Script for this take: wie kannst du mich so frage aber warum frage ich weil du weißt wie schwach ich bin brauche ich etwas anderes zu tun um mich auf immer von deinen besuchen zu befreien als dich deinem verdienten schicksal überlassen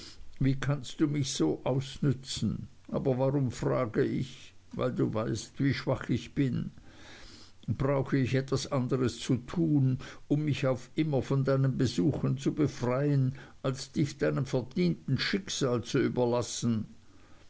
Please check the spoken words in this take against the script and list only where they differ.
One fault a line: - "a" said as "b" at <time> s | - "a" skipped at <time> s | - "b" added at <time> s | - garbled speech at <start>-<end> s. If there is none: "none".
- "frage" said as "ausnützen" at 1.6 s
- "zu" added at 15.8 s